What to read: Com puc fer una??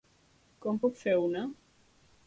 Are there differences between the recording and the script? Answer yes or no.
no